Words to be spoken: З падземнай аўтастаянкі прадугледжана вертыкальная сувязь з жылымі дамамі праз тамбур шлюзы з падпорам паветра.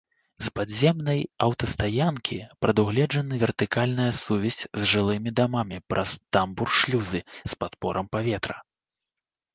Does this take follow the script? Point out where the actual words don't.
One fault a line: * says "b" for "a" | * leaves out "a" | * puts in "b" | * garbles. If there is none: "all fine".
all fine